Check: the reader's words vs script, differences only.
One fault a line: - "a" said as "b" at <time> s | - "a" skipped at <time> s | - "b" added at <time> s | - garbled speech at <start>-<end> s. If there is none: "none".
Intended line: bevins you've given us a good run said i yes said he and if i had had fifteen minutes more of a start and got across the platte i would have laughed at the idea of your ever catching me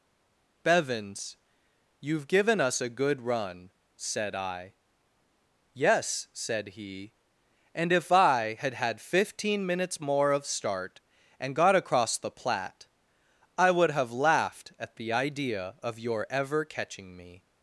- "a" skipped at 10.4 s